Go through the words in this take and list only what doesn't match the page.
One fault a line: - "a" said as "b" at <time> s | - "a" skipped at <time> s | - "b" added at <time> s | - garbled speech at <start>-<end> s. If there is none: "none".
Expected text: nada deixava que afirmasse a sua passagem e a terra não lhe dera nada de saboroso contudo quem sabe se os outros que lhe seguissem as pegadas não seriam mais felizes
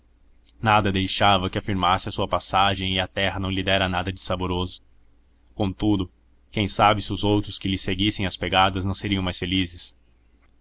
none